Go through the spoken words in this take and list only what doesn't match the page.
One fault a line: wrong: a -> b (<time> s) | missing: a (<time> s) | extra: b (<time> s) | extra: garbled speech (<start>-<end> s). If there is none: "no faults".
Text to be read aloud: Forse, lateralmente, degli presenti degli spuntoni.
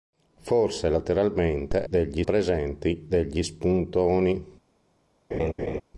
no faults